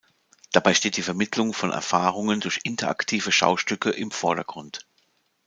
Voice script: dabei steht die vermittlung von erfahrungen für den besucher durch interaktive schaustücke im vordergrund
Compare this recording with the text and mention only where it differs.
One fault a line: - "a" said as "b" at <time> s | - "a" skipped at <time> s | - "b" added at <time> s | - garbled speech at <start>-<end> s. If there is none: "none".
- "für den besucher" skipped at 2.4 s